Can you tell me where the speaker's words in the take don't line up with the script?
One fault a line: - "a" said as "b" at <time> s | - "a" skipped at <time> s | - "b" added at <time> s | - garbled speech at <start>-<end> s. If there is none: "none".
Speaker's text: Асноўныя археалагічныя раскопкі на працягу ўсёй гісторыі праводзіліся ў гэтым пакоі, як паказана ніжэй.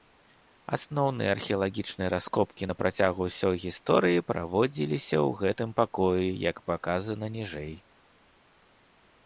none